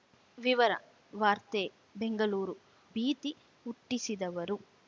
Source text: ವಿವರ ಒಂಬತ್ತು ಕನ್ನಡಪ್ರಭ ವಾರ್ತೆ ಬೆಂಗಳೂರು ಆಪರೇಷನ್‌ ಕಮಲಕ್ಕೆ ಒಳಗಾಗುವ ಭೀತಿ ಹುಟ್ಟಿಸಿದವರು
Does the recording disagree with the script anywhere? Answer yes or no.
yes